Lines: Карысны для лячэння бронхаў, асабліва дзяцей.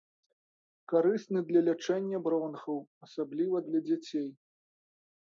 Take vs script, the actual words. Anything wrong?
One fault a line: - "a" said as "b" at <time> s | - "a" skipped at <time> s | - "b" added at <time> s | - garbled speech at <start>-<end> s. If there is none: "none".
- "для" added at 3.7 s